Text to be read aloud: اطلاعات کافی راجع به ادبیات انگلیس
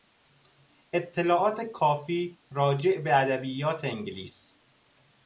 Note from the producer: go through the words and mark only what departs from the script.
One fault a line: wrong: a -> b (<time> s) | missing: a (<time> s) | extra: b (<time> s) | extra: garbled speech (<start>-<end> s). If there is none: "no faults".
no faults